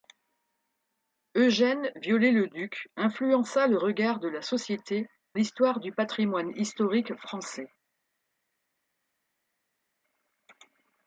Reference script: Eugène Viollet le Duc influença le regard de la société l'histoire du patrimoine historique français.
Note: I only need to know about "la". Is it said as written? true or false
true